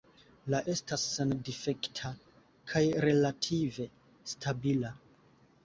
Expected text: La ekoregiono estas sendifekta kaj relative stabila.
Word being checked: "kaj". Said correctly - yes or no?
yes